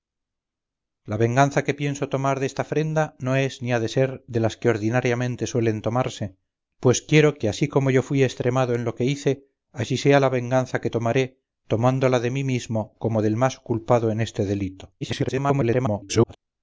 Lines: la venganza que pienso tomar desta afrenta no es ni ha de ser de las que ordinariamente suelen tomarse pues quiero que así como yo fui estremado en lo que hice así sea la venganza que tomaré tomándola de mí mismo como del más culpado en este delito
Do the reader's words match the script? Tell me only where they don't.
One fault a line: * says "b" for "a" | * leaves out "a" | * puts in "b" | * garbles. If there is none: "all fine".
* garbles